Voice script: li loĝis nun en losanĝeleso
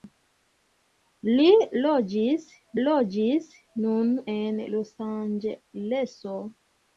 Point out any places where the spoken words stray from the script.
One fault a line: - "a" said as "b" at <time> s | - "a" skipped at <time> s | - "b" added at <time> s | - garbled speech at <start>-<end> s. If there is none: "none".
- "loĝis" added at 2.9 s